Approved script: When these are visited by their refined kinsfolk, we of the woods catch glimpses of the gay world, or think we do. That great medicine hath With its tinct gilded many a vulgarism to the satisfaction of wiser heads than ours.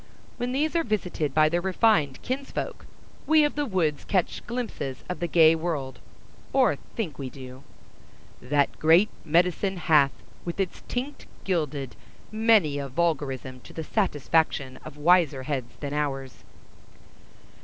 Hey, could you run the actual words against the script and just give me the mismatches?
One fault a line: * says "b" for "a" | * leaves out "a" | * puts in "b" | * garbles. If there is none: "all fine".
all fine